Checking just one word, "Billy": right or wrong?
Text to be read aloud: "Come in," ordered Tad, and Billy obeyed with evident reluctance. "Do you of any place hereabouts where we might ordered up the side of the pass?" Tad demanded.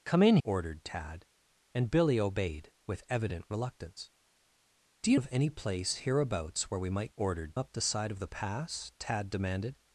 right